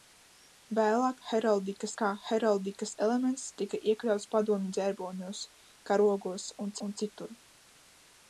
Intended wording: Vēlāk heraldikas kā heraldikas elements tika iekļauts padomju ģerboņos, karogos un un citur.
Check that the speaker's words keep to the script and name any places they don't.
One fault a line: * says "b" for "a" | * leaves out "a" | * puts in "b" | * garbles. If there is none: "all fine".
all fine